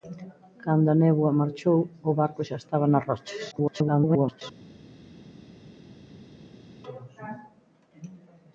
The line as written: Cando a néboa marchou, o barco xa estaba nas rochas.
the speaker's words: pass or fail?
fail